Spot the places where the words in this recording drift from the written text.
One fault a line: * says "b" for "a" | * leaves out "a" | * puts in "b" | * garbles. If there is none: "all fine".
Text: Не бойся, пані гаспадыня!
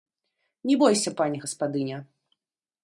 all fine